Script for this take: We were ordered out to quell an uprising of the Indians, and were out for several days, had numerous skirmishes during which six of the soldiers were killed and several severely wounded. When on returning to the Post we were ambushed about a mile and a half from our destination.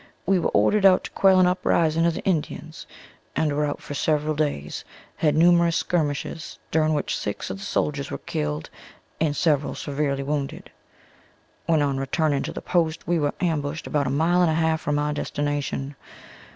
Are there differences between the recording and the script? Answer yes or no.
no